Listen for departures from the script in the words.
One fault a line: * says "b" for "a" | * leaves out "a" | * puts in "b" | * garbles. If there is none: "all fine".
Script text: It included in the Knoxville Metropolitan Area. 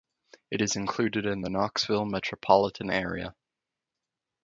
* puts in "is"